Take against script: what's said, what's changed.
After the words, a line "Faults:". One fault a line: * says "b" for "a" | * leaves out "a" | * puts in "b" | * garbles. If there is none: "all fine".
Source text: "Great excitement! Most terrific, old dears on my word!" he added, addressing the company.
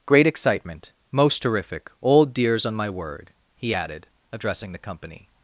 "Great excitement! Most terrific, old dears on my word!" he added, addressing the company.
Faults:
all fine